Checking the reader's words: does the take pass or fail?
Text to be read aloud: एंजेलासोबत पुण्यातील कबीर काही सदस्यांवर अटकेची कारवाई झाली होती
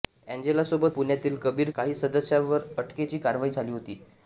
pass